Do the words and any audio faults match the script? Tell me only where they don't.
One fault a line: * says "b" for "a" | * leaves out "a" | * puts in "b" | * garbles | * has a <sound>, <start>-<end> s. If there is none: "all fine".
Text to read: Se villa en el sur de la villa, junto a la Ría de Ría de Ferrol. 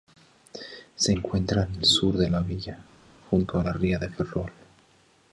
* says "encuentra" for "villa"
* leaves out "Ría de"